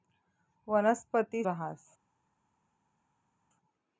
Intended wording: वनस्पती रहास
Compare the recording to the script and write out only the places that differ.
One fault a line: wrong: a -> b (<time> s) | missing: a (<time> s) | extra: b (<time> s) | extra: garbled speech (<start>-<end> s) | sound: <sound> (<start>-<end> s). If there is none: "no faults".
no faults